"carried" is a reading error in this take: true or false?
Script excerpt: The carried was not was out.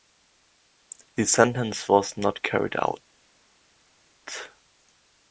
true